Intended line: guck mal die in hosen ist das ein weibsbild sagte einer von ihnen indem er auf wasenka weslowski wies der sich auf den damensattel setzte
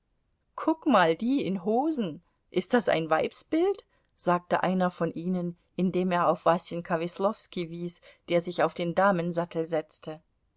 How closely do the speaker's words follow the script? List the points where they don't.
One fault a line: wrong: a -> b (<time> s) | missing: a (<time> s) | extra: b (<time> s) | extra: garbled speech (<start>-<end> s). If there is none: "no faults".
no faults